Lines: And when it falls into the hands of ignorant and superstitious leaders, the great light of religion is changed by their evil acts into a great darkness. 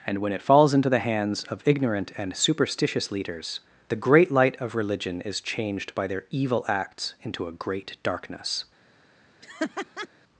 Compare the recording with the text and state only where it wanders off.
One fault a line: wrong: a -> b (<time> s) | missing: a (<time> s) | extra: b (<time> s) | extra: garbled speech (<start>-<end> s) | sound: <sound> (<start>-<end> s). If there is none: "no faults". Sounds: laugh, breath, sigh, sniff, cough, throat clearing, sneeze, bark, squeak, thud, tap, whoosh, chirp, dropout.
sound: laugh (9.4-10.1 s)